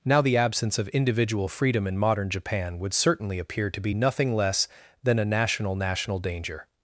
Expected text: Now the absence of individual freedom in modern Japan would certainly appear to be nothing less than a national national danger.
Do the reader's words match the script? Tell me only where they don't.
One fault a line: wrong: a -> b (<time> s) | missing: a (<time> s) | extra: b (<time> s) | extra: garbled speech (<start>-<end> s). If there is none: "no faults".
no faults